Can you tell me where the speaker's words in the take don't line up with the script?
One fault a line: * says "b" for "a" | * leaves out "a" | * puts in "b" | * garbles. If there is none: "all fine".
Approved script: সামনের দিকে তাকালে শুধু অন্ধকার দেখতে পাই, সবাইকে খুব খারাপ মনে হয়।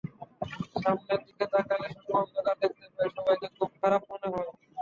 all fine